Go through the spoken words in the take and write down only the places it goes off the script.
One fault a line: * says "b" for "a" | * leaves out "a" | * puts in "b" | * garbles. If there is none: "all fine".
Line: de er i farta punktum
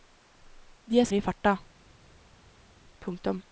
all fine